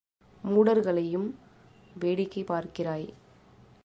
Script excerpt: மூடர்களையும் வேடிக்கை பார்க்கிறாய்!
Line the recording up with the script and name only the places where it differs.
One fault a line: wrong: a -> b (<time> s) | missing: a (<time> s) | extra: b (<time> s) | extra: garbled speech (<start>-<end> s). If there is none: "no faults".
no faults